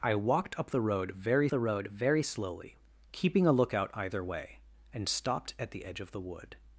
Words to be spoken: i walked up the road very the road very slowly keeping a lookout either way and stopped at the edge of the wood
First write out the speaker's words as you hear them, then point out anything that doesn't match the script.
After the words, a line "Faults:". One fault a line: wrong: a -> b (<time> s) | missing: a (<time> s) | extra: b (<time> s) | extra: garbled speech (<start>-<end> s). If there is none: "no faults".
i walked up the road very the road very slowly keeping a lookout either way and stopped at the edge of the wood
Faults:
no faults